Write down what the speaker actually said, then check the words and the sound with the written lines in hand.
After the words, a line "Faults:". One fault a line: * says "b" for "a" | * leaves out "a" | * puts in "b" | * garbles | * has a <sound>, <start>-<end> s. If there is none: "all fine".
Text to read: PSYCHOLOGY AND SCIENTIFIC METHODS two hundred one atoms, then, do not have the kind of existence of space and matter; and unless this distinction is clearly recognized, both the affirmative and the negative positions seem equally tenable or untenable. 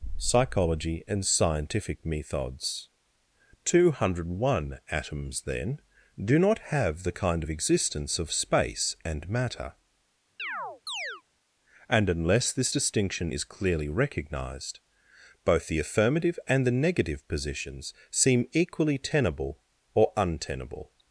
PSYCHOLOGY AND SCIENTIFIC METHODS two hundred one atoms, then, do not have the kind of existence of space and matter; and unless this distinction is clearly recognized, both the affirmative and the negative positions seem equally tenable or untenable.
Faults:
* has a chirp, 10.4-11.2 s